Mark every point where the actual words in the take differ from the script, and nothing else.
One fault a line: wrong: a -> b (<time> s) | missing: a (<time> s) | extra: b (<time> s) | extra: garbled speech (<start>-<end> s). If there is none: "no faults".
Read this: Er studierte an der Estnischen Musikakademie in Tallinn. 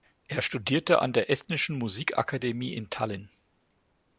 no faults